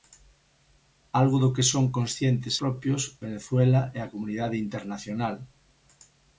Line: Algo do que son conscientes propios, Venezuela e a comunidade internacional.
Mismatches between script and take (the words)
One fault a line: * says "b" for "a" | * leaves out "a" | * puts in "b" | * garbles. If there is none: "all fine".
all fine